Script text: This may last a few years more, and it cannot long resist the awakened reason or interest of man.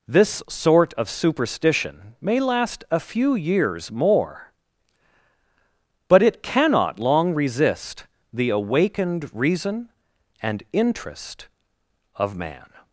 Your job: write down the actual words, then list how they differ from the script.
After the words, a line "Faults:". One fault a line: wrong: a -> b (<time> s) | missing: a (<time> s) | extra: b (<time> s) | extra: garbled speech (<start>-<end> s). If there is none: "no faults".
This sort of superstition may last a few years more, but it cannot long resist the awakened reason and interest of man.
Faults:
extra: sort of superstition (0.5 s)
wrong: and -> but (6.1 s)
wrong: or -> and (10.4 s)